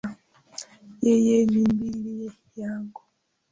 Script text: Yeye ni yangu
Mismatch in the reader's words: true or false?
true